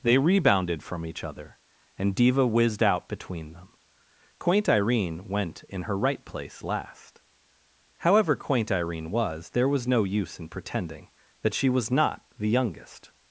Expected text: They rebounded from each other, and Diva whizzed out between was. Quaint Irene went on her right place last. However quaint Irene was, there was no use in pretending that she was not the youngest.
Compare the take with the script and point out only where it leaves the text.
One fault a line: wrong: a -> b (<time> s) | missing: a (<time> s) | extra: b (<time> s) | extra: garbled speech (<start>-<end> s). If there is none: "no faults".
wrong: was -> them (3.5 s)
wrong: on -> in (5.7 s)